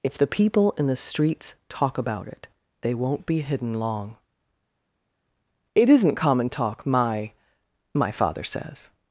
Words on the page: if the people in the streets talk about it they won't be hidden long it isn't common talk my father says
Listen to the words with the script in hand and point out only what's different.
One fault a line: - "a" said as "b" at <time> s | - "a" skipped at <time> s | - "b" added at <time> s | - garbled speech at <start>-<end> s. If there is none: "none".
- "my" added at 8.0 s